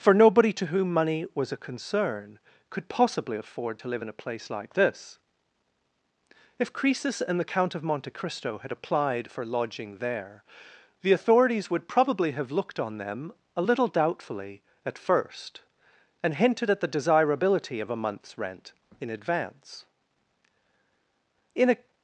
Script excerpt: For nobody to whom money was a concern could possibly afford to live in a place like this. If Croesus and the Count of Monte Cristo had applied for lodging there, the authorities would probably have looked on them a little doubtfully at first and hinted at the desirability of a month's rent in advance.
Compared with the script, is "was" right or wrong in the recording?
right